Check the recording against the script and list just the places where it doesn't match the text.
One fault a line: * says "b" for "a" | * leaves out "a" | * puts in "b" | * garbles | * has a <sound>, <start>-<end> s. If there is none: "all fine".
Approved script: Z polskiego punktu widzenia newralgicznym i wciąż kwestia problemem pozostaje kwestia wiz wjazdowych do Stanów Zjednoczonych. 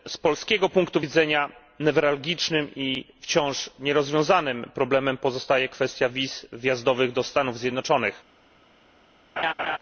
* says "nierozwiązanym" for "kwestia"
* has a laugh, 9.4-9.8 s